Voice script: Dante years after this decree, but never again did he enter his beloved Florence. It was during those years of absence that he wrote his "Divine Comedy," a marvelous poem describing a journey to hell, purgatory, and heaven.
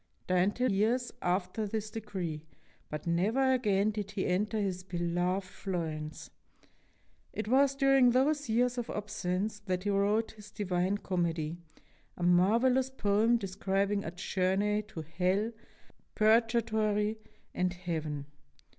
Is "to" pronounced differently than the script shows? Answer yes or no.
no